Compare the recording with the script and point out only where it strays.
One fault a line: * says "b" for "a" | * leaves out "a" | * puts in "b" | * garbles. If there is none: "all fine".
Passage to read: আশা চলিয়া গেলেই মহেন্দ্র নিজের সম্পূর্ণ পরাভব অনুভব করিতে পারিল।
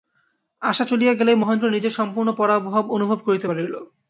all fine